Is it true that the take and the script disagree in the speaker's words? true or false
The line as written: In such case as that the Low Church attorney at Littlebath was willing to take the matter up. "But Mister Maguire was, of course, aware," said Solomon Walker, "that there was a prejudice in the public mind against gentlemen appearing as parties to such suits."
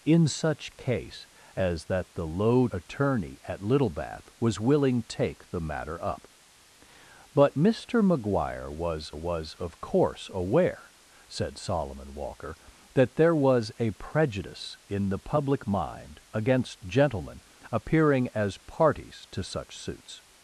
true